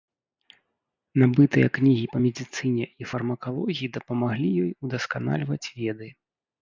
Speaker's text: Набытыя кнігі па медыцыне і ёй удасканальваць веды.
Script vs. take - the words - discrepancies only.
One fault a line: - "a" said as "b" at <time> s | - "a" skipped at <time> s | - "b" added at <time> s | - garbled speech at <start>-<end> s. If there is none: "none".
- "фармакалогіі дапамаглі" added at 3.1 s